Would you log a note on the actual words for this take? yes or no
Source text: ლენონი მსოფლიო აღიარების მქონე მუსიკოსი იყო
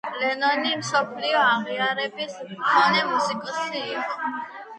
no